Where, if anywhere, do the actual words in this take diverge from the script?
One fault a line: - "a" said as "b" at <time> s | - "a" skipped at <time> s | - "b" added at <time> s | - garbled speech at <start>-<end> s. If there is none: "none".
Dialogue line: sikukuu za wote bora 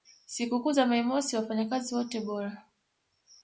- "mei mosi wafanyakazi" added at 0.9 s